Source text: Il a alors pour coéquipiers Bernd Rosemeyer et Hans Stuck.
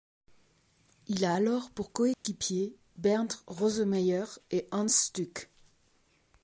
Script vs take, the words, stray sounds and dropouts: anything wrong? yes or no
yes